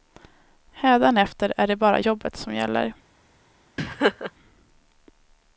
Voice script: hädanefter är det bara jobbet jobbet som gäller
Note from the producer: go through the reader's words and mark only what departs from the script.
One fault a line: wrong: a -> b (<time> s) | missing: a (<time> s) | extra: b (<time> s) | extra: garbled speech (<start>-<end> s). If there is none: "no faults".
missing: jobbet (2.4 s)